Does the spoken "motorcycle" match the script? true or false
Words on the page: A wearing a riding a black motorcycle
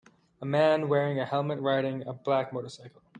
true